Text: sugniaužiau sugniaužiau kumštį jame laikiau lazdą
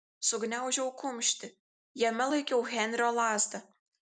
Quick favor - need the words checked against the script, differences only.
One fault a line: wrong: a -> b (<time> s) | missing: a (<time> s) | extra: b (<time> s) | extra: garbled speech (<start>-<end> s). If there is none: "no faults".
missing: sugniaužiau (0.9 s)
extra: henrio (2.8 s)